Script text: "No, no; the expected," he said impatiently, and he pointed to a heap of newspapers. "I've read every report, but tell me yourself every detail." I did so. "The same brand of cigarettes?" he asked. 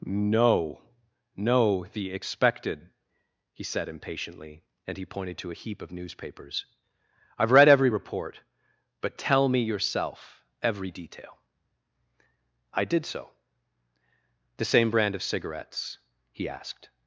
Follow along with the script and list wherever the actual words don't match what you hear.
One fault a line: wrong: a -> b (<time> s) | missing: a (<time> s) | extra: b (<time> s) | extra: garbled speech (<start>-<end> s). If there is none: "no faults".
no faults